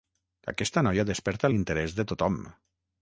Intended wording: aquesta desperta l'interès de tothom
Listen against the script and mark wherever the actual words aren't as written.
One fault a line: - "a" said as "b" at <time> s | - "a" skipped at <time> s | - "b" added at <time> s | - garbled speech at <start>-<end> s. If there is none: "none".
- "noia" added at 0.9 s